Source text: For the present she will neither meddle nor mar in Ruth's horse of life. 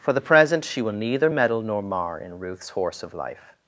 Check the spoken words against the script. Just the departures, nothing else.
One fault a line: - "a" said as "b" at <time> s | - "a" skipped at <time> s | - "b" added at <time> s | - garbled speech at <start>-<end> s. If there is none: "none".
none